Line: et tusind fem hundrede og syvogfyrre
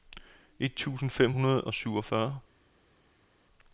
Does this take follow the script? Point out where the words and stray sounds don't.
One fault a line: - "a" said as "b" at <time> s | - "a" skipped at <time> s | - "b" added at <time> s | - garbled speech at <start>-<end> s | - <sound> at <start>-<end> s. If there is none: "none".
none